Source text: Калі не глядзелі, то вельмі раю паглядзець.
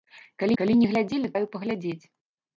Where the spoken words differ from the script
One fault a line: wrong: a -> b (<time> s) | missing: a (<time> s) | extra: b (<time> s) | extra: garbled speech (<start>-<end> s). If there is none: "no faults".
extra: калі (0.6 s)
missing: то вельмі (1.3 s)